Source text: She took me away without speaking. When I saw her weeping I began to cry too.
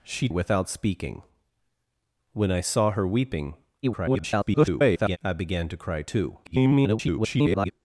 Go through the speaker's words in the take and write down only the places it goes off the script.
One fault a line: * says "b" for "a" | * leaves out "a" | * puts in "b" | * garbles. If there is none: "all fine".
* leaves out "took me away"
* garbles
* garbles